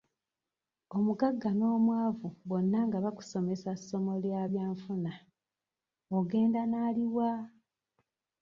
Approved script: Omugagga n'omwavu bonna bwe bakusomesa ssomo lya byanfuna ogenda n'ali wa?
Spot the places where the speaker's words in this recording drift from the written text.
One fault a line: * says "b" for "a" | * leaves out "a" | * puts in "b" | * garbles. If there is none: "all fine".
* says "nga" for "bwe"